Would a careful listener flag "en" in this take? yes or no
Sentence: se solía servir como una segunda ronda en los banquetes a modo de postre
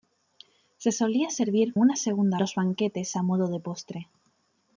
yes